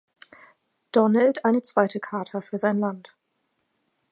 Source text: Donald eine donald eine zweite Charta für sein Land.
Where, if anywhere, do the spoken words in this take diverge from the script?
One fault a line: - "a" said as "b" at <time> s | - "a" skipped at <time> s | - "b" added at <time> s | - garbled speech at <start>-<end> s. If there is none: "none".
- "donald eine" skipped at 1.6 s